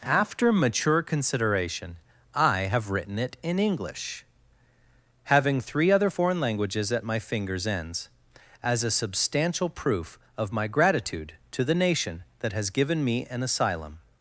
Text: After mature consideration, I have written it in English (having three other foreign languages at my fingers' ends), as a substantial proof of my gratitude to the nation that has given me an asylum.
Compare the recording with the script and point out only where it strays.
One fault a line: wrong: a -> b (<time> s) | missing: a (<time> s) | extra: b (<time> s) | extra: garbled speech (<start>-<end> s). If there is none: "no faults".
no faults